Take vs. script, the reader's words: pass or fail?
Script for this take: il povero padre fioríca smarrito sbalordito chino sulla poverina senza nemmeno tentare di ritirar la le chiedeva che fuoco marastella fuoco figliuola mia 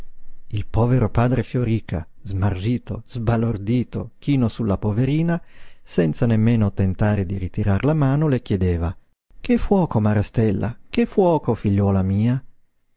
fail